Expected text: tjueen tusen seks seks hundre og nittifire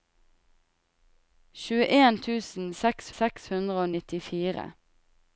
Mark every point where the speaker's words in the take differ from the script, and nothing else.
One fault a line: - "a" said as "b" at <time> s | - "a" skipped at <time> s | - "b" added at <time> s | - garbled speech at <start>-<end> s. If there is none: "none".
none